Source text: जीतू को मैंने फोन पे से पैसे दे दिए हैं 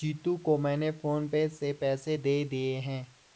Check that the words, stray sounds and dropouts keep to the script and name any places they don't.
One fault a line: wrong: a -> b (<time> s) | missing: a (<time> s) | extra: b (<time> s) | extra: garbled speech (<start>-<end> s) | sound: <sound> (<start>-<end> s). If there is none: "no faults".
no faults